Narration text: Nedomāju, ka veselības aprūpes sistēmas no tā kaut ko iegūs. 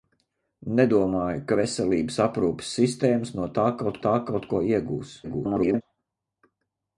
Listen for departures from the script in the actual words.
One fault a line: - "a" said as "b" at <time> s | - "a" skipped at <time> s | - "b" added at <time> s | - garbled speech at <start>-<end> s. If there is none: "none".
- "tā kaut" added at 4.1 s
- garbled speech at 5.2-5.8 s